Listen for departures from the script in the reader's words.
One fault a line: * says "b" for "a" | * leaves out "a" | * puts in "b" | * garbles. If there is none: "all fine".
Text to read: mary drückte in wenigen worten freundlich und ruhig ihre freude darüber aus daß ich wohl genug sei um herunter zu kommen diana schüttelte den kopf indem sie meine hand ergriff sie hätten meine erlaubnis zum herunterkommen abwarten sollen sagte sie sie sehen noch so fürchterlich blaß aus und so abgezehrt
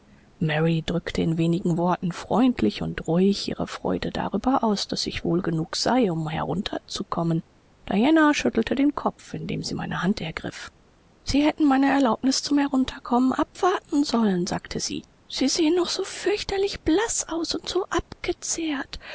all fine